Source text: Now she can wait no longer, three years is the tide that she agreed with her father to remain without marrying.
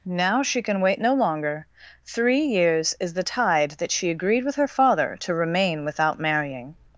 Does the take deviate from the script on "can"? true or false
false